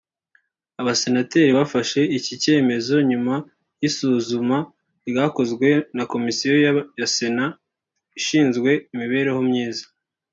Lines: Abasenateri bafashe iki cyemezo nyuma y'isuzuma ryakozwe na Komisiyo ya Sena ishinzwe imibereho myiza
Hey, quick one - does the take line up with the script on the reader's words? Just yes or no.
yes